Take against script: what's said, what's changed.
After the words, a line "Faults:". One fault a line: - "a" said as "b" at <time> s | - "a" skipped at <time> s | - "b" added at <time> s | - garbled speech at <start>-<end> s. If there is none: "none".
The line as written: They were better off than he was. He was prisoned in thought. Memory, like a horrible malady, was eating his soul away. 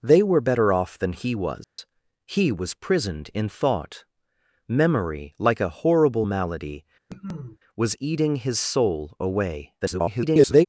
They were better off than he was. He was prisoned in thought. Memory, like a horrible malady, was eating his soul away. [garbled]
Faults:
- garbled speech at 9.8-10.7 s